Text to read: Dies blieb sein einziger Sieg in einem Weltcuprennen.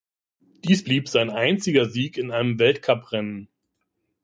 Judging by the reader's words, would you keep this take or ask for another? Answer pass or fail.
pass